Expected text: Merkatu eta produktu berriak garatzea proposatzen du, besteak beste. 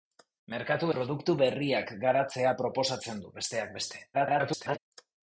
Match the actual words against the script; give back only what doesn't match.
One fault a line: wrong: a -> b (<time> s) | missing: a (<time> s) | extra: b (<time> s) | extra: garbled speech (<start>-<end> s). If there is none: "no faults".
missing: eta (0.9 s)
extra: garbled speech (4.1-4.8 s)